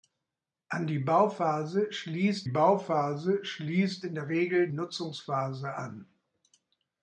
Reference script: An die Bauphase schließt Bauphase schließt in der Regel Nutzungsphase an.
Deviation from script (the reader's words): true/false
false